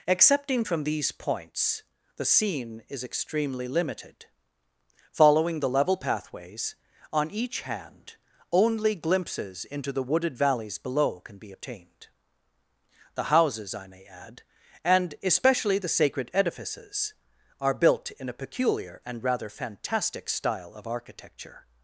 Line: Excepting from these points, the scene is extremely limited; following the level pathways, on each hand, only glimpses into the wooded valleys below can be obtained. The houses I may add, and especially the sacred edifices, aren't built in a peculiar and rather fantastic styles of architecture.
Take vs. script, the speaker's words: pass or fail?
fail